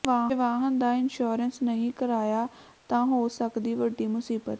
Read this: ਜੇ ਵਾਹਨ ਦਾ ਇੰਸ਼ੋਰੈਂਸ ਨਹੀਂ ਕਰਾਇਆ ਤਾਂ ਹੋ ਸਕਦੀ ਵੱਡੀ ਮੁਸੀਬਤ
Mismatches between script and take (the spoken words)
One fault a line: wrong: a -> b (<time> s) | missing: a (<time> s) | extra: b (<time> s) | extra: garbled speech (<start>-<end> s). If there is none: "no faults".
no faults